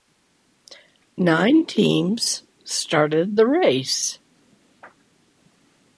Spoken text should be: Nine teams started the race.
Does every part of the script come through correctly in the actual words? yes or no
yes